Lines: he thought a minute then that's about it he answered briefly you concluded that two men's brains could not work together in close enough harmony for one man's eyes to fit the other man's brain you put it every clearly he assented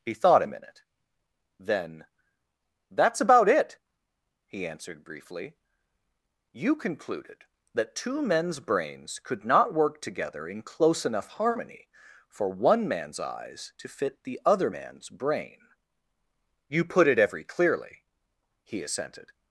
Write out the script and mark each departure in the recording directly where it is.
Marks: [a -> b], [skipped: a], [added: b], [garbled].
he thought a minute then that's about it he answered briefly you concluded that two men's brains could not work together in close enough harmony for one man's eyes to fit the other man's brain you put it every clearly he assented